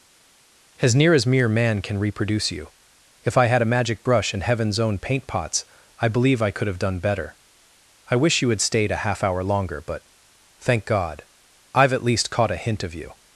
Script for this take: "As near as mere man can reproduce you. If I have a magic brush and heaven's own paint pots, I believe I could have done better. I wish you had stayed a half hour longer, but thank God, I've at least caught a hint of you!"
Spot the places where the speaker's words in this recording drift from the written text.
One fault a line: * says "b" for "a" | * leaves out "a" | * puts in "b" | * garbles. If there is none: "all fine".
* says "had" for "have"